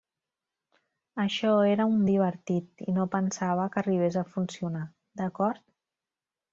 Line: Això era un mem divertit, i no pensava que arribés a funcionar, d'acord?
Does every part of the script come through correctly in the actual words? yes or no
no